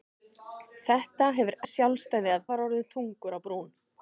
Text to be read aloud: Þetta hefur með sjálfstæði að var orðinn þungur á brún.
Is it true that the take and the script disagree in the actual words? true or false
false